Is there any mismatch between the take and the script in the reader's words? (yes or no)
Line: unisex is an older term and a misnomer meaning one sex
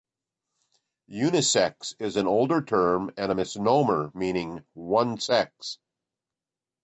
no